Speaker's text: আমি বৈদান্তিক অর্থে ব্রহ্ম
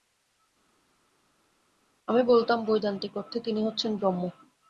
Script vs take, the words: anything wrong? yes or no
yes